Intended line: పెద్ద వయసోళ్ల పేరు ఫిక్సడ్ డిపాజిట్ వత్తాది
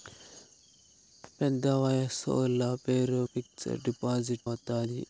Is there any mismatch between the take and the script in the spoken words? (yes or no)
no